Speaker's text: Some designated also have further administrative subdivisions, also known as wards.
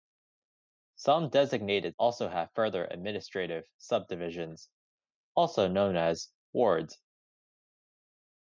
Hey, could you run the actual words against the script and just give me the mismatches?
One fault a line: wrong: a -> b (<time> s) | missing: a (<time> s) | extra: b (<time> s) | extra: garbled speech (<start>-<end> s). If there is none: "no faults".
no faults